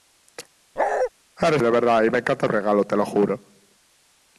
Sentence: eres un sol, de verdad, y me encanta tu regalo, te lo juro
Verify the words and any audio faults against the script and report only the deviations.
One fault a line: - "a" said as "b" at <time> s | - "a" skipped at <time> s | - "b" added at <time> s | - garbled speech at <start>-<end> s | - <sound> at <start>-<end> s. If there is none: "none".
- bark at 0.8-1.1 s
- "un sol" skipped at 1.6 s
- "tu" skipped at 2.5 s